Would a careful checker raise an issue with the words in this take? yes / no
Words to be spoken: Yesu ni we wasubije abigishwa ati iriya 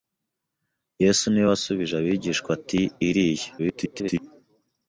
yes